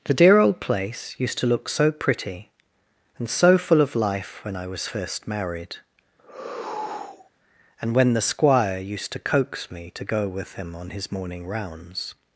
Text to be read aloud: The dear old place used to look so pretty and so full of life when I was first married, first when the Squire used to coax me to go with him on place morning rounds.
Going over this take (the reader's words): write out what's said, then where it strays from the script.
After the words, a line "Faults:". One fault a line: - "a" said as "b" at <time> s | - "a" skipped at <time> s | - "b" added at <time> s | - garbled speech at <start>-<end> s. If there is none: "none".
The dear old place used to look so pretty and so full of life when I was first married, and when the Squire used to coax me to go with him on his morning rounds.
Faults:
- "first" said as "and" at 7.8 s
- "place" said as "his" at 10.9 s